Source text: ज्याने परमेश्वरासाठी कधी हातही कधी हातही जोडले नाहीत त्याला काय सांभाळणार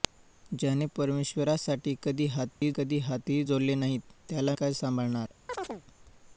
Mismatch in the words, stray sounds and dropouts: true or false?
true